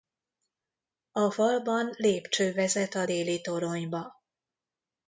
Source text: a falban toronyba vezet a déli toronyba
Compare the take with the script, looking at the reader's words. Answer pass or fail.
fail